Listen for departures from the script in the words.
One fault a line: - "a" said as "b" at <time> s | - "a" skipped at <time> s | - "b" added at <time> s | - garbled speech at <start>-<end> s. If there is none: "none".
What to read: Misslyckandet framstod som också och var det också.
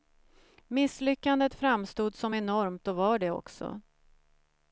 - "också" said as "enormt" at 2.3 s